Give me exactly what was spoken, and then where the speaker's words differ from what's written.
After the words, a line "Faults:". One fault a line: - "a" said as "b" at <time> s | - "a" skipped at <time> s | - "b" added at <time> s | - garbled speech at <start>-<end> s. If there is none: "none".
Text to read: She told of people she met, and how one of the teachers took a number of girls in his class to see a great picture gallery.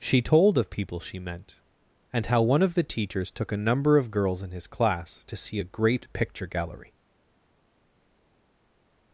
She told of people she meant, and how one of the teachers took a number of girls in his class to see a great picture gallery.
Faults:
- "met" said as "meant" at 1.2 s